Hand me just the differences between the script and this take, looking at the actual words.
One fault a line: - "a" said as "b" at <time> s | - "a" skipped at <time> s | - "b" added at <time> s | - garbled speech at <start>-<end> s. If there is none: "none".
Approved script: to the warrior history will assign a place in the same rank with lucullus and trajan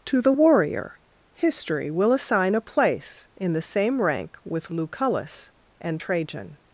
none